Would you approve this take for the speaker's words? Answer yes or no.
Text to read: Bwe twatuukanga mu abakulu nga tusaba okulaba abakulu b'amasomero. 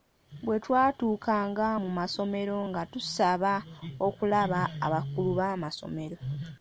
no